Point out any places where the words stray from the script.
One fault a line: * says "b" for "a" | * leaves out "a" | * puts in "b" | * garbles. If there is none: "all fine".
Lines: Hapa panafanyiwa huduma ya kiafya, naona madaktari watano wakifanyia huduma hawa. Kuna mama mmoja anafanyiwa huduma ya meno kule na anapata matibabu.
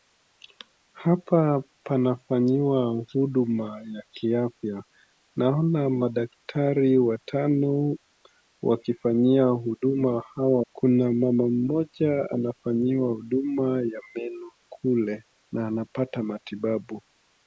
all fine